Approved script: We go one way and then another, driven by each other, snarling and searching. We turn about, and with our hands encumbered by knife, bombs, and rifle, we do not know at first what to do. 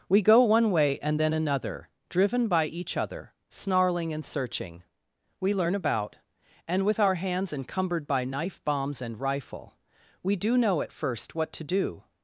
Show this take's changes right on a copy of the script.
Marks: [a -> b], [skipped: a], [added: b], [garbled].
We go one way and then another, driven by each other, snarling and searching. We [turn -> learn] about, and with our hands encumbered by knife, bombs, and rifle, we do [skipped: not] know at first what to do.